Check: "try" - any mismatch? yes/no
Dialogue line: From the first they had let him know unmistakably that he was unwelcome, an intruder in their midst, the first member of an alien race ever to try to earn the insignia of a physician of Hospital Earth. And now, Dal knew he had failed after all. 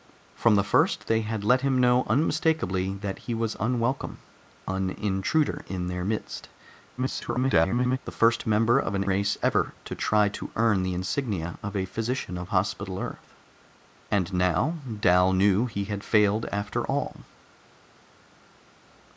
no